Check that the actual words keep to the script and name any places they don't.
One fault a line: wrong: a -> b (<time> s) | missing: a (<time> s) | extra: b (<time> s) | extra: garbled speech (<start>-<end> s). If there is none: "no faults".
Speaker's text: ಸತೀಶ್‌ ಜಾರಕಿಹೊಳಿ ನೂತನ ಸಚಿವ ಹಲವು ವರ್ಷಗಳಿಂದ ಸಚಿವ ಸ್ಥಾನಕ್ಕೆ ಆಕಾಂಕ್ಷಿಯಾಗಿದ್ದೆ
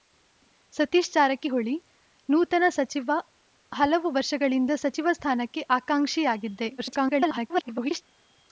extra: garbled speech (6.8-8.0 s)